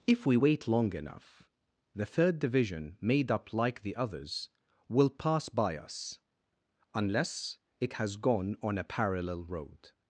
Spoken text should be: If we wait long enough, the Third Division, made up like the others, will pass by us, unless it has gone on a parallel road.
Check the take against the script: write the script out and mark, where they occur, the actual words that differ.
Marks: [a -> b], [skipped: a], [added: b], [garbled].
If we wait long enough, the Third Division, made up like the others, will pass by us, unless it has gone on a parallel road.